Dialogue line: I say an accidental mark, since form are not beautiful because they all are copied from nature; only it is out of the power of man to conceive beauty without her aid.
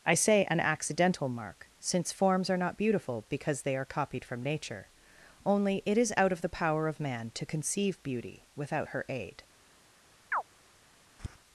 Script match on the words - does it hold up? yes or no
no